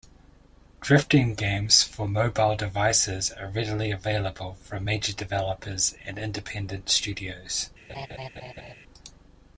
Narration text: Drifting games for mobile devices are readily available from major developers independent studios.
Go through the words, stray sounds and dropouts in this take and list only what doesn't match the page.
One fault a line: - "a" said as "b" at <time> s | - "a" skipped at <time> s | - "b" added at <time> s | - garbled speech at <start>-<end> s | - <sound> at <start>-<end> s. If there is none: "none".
- "and" added at 6.0 s
- laugh at 7.9-8.8 s